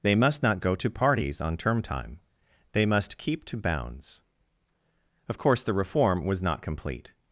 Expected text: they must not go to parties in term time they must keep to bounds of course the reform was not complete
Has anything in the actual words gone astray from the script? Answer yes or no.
yes